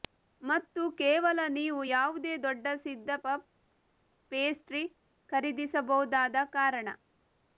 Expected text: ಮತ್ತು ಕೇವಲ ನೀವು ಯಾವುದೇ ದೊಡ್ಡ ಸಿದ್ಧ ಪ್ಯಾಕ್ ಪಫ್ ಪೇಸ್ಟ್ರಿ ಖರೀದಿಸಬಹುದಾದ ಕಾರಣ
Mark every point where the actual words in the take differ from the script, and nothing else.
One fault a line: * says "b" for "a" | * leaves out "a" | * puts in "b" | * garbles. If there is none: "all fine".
* leaves out "ಪ್ಯಾಕ್"